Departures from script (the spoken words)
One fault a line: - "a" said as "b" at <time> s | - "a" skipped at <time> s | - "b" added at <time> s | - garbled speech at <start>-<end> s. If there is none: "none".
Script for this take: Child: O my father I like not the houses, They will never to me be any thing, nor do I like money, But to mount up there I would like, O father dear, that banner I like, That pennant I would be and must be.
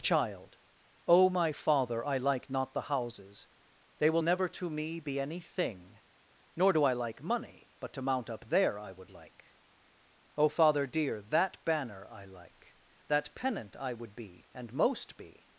- "must" said as "most" at 14.7 s